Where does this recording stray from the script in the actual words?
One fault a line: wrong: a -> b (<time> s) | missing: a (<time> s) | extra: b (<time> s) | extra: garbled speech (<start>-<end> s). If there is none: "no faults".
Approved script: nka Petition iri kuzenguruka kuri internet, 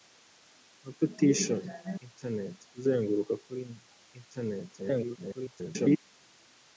wrong: iri -> internet (2.1 s)
extra: garbled speech (4.8-6.0 s)